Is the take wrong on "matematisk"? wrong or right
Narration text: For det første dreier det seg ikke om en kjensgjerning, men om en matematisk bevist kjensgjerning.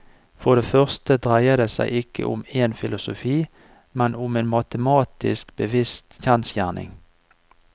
right